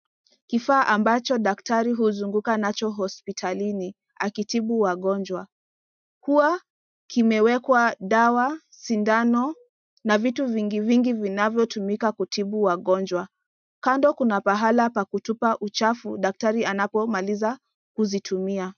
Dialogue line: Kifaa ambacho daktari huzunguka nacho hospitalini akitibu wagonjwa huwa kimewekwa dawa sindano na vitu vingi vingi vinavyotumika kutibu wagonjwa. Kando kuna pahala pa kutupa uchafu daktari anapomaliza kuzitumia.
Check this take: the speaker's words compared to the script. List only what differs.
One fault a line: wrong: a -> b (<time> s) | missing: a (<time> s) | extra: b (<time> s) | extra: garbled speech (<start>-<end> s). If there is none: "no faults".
no faults